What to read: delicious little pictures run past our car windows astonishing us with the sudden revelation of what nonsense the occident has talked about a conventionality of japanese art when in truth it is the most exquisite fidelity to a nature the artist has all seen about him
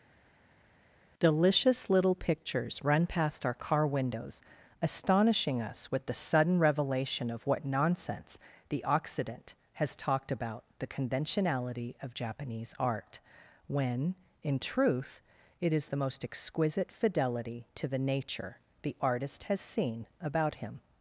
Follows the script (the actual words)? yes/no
no